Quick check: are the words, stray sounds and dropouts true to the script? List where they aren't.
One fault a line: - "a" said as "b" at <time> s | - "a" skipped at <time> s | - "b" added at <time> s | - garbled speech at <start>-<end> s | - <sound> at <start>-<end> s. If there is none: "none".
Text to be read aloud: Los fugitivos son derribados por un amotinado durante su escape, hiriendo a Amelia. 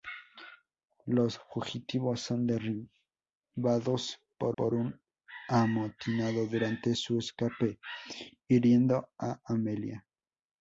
- "por" added at 4.6 s